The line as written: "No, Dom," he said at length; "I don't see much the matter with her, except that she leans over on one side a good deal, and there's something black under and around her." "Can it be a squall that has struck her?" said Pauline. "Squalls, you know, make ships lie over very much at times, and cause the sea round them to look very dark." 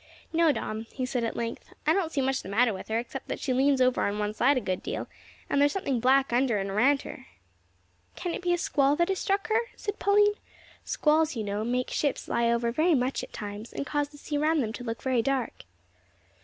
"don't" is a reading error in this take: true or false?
false